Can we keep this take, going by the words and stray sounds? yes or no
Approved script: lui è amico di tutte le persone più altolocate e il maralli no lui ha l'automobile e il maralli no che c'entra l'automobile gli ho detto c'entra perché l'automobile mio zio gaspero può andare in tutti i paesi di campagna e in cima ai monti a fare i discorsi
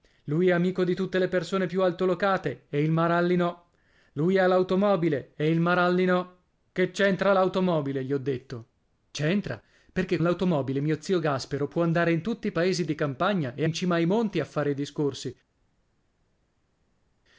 yes